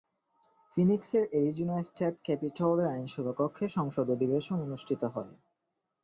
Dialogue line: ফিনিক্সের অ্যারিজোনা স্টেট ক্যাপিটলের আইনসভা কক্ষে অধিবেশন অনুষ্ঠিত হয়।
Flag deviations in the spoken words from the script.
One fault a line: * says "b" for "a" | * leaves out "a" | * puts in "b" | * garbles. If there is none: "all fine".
* puts in "সংসদ"